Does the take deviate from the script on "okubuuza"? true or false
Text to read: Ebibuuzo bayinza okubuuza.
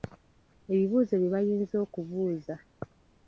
false